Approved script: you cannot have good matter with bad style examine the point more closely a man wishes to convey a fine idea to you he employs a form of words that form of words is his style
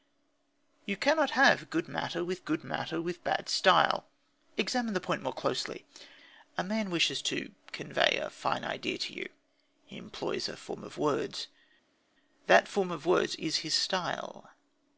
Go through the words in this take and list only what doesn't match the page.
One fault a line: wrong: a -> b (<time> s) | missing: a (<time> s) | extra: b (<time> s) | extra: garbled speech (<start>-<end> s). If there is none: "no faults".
extra: good matter with (2.4 s)